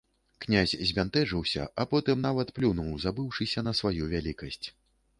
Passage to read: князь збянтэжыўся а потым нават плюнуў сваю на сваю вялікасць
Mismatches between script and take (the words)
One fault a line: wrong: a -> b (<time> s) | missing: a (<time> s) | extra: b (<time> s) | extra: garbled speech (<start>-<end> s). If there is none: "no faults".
wrong: сваю -> забыўшыся (3.1 s)